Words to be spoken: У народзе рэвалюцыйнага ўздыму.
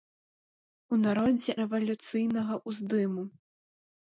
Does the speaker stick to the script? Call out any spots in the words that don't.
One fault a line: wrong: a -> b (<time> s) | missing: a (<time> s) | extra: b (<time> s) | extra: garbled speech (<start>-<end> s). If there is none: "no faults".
no faults